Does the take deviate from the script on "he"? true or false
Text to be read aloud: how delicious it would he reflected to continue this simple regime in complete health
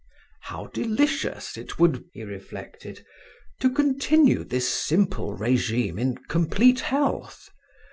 false